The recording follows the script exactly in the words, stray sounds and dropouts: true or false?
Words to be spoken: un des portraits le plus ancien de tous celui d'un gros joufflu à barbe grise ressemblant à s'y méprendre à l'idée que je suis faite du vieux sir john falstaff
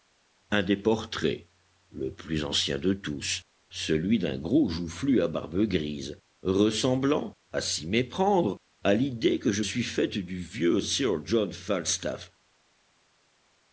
true